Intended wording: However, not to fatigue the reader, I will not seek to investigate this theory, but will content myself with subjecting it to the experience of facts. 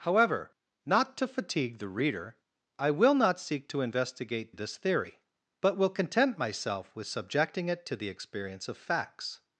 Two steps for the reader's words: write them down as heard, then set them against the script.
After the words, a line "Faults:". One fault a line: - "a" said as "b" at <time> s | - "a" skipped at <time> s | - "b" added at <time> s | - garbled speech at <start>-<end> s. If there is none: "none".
However, not to fatigue the reader, I will not seek to investigate this theory, but will content myself with subjecting it to the experience of facts.
Faults:
none